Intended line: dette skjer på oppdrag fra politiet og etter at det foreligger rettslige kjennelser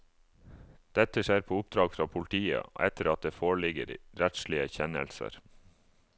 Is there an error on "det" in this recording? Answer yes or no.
no